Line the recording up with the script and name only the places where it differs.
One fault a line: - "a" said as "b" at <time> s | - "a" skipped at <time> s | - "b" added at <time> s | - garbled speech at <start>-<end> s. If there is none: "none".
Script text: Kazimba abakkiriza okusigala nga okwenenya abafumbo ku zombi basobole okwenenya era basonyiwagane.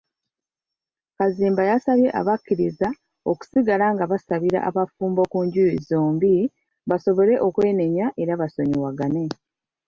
- "yasabye" added at 1.7 s
- "okwenenya" said as "basabira" at 4.1 s
- "njuyi" added at 5.5 s